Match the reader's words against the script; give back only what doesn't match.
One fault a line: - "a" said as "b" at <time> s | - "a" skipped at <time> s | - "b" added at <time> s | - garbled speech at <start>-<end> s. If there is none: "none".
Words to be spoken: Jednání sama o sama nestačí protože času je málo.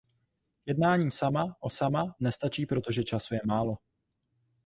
none